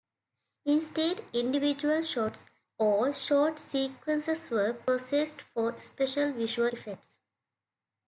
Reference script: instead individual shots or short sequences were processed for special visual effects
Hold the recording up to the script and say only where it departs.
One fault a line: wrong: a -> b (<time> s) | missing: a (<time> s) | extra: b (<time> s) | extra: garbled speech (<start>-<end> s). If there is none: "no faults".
no faults